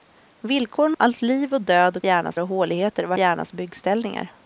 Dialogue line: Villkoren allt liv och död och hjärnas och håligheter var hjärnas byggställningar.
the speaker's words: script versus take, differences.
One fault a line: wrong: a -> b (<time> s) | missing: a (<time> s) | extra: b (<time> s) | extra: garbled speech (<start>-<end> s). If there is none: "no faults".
no faults